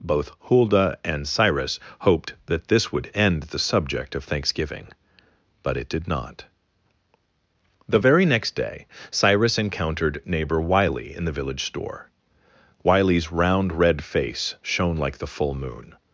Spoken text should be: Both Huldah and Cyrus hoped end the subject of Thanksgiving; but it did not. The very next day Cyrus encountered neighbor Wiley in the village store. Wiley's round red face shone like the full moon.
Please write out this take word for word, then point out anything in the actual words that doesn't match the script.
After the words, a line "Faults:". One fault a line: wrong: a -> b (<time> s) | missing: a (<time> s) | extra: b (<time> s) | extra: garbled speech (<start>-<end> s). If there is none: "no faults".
Both Huldah and Cyrus hoped that this would end the subject of Thanksgiving; but it did not. The very next day Cyrus encountered neighbor Wiley in the village store. Wiley's round red face shone like the full moon.
Faults:
extra: that this would (2.5 s)